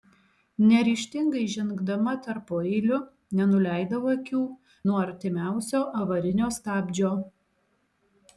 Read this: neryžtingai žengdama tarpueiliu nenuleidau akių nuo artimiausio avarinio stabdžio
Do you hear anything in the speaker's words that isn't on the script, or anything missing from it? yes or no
no